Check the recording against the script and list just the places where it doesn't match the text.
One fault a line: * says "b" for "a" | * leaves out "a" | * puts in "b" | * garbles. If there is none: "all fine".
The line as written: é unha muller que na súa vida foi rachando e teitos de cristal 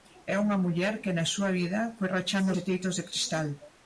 all fine